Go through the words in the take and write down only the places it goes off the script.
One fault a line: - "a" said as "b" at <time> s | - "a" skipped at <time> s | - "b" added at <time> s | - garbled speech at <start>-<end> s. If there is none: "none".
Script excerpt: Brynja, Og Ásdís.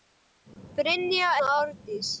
none